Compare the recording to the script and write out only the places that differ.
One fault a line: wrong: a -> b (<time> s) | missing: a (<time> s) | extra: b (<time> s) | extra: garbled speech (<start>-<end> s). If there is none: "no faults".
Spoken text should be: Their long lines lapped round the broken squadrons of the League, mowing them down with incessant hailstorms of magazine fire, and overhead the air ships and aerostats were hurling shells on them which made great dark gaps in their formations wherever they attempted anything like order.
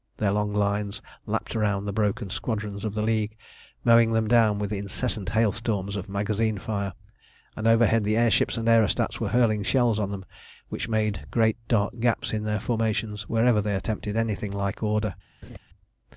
no faults